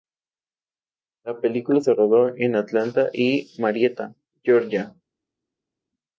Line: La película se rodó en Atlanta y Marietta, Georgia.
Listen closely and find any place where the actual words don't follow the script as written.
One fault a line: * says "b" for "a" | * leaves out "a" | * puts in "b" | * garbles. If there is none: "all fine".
all fine